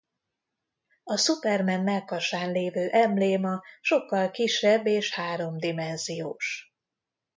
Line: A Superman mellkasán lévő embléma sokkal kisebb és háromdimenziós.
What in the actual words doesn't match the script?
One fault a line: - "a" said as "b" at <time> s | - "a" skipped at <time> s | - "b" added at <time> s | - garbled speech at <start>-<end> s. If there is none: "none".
none